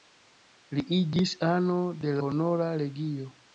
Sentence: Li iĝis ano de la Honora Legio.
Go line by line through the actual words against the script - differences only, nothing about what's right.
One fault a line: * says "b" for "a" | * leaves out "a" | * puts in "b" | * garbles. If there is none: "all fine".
* leaves out "la"